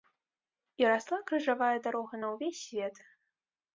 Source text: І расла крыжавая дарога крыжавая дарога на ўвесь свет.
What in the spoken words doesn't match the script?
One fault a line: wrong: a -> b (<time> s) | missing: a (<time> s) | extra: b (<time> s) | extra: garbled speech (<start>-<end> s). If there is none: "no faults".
missing: крыжавая дарога (2.1 s)